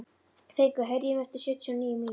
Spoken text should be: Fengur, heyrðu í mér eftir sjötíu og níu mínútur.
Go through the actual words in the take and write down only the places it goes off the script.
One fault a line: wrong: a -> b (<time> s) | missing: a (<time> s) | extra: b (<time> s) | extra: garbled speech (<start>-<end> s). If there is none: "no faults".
no faults